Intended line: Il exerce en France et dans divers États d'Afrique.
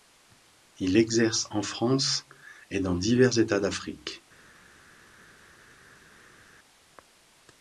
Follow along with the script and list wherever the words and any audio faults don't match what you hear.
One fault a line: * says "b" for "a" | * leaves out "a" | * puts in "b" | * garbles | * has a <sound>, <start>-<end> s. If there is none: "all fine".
all fine